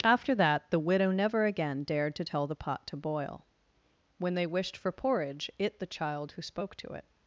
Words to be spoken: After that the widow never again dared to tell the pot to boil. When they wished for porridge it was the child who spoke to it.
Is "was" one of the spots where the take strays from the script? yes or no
yes